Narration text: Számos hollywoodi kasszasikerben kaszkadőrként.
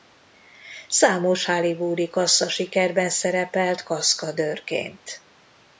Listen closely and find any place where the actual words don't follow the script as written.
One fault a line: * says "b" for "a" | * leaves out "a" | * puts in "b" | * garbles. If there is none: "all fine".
* puts in "szerepelt"